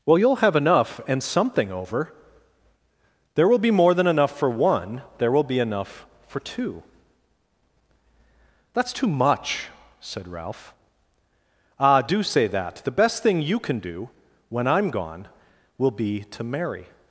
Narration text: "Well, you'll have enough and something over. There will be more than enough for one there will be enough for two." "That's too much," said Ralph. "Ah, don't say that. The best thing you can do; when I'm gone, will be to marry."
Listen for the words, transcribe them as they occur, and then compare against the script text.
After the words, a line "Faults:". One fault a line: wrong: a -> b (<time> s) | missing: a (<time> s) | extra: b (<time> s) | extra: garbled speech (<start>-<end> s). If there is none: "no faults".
"Well, you'll have enough and something over. There will be more than enough for one there will be enough for two." "That's too much," said Ralph. "Ah, do say that. The best thing you can do; when I'm gone, will be to marry."
Faults:
wrong: don't -> do (12.0 s)